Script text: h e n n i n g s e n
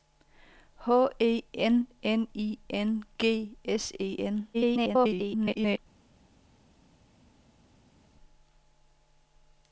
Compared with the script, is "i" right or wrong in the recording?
right